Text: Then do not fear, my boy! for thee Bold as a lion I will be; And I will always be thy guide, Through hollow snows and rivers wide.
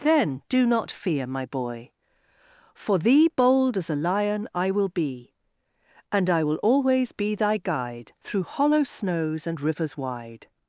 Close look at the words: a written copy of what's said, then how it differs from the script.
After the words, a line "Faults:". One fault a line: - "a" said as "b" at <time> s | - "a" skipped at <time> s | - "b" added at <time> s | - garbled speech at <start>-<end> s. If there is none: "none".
Then do not fear, my boy! for thee Bold as a lion I will be; And I will always be thy guide, Through hollow snows and rivers wide.
Faults:
none